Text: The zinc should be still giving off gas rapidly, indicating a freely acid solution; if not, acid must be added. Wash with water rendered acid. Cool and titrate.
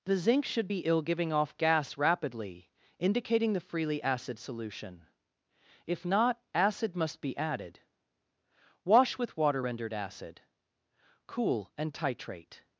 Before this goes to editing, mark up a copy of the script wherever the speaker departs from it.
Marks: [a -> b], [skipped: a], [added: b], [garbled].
The zinc should be [still -> ill] giving off gas rapidly, indicating [a -> the] freely acid solution; if not, acid must be added. Wash with water rendered acid. Cool and titrate.